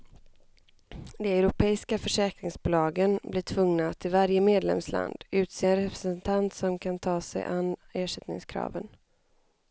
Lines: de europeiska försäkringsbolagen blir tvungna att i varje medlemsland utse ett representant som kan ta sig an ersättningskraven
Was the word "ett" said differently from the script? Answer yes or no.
yes